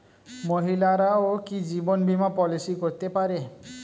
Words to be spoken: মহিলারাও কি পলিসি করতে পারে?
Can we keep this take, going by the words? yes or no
no